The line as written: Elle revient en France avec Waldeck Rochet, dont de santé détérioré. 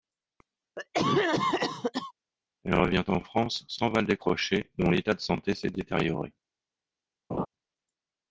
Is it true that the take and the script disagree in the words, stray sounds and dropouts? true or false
true